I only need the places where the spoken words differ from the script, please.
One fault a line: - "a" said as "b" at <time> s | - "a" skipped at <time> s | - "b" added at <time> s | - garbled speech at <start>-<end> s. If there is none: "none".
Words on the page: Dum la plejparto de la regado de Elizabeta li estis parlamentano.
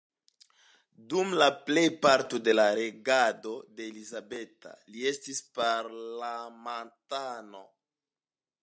none